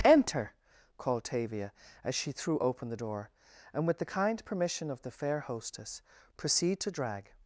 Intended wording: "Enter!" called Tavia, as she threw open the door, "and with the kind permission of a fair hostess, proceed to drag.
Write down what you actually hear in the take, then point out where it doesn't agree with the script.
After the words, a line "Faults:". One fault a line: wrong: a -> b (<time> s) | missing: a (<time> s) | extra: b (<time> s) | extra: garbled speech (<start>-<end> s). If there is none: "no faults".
"Enter!" called Tavia, as she threw open the door, "and with the kind permission of the fair hostess, proceed to drag.
Faults:
wrong: a -> the (5.0 s)